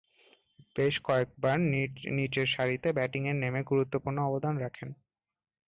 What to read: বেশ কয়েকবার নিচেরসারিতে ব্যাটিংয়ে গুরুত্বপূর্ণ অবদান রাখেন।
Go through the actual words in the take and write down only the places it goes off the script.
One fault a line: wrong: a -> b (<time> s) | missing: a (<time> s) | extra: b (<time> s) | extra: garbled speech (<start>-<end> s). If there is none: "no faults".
extra: নেমে (3.3 s)